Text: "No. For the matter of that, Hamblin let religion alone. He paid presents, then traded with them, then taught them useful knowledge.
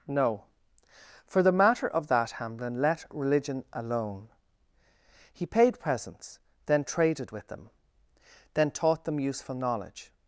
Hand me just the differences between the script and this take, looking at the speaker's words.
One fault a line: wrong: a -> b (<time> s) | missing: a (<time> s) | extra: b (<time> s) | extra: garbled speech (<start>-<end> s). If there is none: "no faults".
no faults